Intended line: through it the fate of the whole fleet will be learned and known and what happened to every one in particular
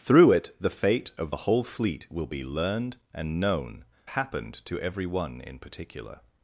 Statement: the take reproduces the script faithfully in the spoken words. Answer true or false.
false